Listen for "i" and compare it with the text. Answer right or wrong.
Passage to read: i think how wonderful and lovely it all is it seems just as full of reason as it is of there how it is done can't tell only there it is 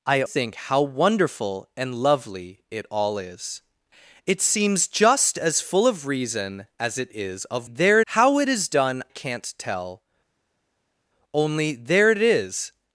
right